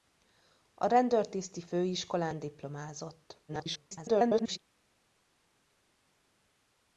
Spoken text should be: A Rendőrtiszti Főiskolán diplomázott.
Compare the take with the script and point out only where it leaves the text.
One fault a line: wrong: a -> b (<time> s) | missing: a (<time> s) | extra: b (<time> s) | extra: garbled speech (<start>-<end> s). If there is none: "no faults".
extra: garbled speech (3.5-4.6 s)